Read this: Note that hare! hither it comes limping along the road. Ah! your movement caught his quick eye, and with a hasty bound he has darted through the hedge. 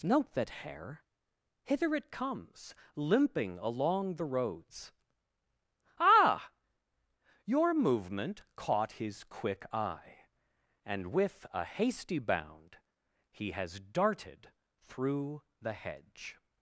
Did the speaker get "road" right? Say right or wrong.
wrong